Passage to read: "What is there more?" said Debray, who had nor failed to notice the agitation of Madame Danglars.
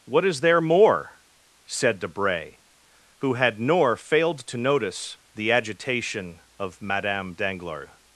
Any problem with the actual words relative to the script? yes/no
no